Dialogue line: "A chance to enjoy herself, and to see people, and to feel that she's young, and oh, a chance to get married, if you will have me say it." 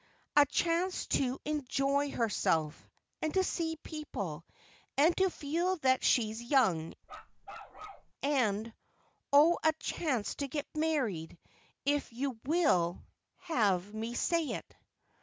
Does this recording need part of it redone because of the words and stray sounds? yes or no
yes